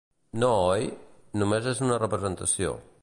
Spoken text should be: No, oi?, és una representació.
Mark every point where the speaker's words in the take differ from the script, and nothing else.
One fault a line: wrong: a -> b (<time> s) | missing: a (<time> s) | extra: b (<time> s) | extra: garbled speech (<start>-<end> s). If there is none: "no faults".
extra: només (1.4 s)